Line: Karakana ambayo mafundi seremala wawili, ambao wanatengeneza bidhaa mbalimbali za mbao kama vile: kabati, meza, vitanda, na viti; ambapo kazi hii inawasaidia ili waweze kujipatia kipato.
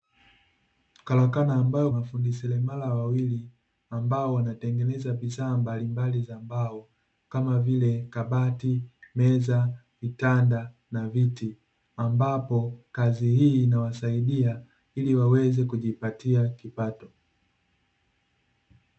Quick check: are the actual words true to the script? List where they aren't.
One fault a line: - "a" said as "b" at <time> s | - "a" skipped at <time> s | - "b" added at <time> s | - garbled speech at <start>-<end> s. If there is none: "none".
none